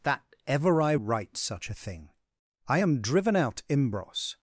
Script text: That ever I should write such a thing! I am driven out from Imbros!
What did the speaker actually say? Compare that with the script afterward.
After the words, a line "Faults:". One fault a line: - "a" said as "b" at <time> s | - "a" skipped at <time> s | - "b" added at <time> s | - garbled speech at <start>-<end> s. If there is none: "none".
That ever I write such a thing! I am driven out Imbros!
Faults:
- "should" skipped at 0.9 s
- "from" skipped at 3.6 s